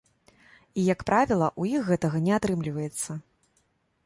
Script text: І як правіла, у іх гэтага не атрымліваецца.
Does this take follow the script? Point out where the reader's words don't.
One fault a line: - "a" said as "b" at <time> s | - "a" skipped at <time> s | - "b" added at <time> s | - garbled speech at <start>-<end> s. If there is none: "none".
none